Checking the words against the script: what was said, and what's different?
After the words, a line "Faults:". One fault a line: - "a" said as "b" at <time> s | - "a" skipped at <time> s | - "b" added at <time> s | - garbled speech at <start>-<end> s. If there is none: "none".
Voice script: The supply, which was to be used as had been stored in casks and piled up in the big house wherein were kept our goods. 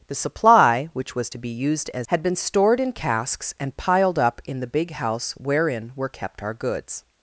The supply, which was to be used as had been stored in casks and piled up in the big house wherein were kept our goods.
Faults:
none